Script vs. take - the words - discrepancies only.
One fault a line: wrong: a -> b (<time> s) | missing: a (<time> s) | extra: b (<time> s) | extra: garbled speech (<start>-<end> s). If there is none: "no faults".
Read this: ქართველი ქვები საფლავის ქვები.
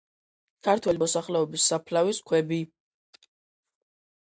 wrong: ქვები -> მოსახლეობის (1.0 s)